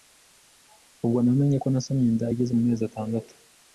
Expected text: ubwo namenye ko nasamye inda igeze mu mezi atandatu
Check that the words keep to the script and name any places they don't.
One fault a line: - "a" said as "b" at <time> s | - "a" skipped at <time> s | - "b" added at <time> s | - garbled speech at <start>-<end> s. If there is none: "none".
none